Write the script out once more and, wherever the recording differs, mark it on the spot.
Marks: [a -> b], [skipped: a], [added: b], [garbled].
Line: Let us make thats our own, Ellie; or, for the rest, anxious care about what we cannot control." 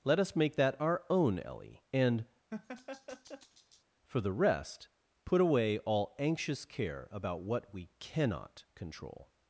Let us make [thats -> that] our own, Ellie; [or, -> and] for the rest, [added: put away all] anxious care about what we cannot control."